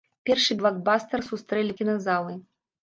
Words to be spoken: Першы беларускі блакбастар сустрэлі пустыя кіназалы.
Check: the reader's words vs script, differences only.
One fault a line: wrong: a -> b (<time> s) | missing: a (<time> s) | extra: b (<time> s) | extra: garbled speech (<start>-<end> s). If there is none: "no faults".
missing: беларускі (0.6 s)
missing: пустыя (1.7 s)